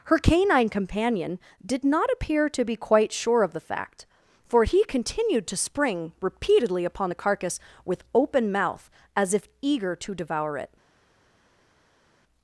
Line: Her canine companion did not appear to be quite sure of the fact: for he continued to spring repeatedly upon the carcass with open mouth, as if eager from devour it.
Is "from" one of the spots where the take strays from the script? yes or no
yes